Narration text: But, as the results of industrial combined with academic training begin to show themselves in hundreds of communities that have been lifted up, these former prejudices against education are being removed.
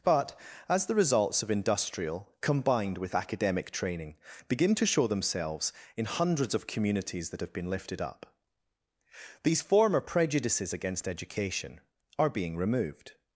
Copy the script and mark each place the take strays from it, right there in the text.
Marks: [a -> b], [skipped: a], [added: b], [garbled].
But, as the results of industrial combined with academic training begin to show themselves in hundreds of communities that have been lifted up, these former prejudices against education are being removed.